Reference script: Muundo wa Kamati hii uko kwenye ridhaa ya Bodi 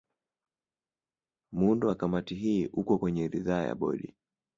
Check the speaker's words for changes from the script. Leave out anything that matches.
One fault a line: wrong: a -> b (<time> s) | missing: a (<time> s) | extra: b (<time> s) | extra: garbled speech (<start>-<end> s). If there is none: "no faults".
no faults